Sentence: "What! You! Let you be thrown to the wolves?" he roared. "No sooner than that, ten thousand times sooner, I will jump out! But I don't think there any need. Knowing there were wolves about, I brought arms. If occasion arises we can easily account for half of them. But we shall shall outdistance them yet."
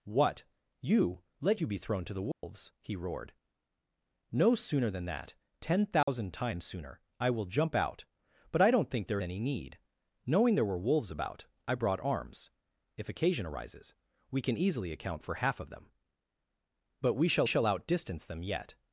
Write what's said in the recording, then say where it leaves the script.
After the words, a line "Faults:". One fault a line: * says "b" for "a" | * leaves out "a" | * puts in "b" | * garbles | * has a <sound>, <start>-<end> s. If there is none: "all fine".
"What! You! Let you be thrown to the wolves?" he roared. "No sooner than that, ten thousand times sooner, I will jump out! But I don't think there any need. Knowing there were wolves about, I brought arms. If occasion arises we can easily account for half of them. But we shall shall outdistance them yet."
Faults:
* has a dropout, 2.3-2.4 s
* has a dropout, 6.0-6.1 s